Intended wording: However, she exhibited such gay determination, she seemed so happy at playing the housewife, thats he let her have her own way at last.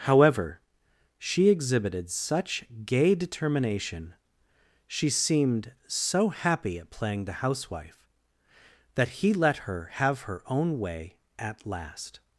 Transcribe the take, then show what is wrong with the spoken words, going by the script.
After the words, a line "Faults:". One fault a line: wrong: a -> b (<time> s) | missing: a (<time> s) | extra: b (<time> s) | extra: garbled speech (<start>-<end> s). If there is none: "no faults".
However, she exhibited such gay determination, she seemed so happy at playing the housewife, that he let her have her own way at last.
Faults:
wrong: thats -> that (8.9 s)